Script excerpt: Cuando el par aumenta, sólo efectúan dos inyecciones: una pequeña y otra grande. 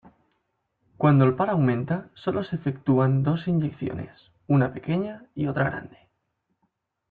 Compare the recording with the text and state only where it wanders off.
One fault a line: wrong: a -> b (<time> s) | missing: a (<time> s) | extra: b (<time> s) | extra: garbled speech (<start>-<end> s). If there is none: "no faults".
extra: se (2.4 s)